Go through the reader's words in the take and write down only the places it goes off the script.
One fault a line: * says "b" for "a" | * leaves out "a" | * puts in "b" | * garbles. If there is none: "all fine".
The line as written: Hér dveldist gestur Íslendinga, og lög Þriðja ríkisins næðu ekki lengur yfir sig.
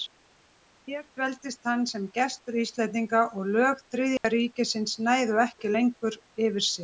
* puts in "hann sem"